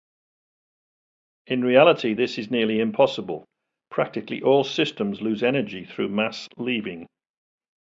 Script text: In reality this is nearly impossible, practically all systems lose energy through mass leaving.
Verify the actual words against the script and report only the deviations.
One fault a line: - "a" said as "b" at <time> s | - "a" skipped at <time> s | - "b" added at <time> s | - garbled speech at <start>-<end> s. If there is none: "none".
none